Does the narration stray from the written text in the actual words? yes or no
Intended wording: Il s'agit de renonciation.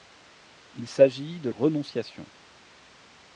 no